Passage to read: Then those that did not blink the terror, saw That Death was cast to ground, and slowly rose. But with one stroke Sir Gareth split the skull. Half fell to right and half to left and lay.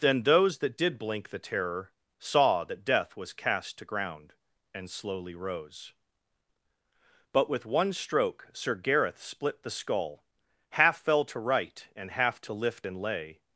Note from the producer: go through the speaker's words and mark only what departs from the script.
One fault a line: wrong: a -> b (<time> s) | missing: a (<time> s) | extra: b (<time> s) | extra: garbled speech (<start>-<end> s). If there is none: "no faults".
missing: not (1.0 s)
wrong: left -> lift (12.5 s)